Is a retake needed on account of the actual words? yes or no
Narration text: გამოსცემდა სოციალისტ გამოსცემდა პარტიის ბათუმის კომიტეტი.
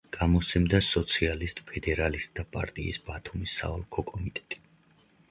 yes